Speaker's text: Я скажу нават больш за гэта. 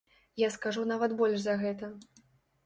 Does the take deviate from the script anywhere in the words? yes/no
no